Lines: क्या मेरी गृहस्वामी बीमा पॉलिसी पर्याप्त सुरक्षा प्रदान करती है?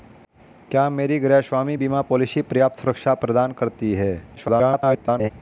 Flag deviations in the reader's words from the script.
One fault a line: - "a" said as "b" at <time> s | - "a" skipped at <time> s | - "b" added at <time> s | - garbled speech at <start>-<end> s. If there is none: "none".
- garbled speech at 4.4-5.3 s